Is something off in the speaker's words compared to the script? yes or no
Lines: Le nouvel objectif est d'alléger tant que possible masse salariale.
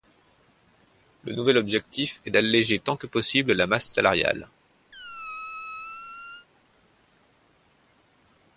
yes